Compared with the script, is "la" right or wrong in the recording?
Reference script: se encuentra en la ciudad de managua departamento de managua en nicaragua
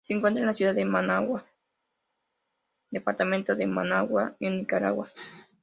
right